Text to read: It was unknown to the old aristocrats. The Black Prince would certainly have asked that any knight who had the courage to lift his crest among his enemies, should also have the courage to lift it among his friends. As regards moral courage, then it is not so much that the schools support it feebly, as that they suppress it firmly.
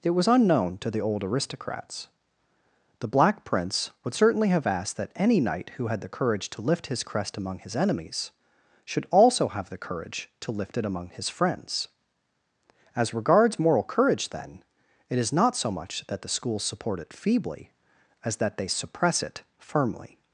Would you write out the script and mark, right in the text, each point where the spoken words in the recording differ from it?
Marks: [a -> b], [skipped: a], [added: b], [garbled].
It was unknown to the old aristocrats. The Black Prince would certainly have asked that any knight who had the courage to lift his crest among his enemies, should also have the courage to lift it among his friends. As regards moral courage, then it is not so much that the schools support it feebly, as that they suppress it firmly.